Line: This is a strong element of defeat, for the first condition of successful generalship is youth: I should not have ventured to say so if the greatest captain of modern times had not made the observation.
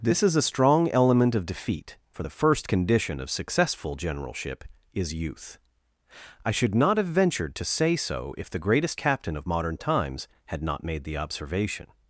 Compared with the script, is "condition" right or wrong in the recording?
right